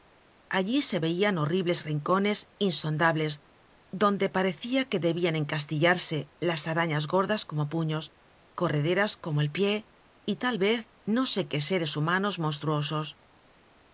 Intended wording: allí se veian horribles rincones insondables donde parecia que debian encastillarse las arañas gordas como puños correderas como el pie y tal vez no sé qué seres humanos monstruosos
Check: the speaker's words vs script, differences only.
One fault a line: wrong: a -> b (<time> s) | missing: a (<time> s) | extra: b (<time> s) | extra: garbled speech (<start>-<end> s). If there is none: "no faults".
no faults